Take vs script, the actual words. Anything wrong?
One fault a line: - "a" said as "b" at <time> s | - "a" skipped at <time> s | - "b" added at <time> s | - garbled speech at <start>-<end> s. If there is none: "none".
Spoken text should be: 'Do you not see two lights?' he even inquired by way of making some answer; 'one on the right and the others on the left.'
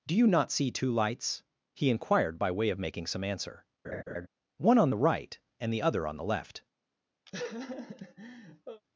- "even" skipped at 1.9 s
- "others" said as "other" at 5.8 s